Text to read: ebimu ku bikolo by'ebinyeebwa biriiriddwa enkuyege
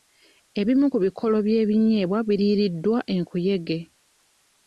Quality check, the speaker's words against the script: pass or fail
pass